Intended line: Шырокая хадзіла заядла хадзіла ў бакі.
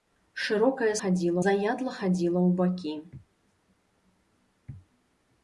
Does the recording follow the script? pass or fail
pass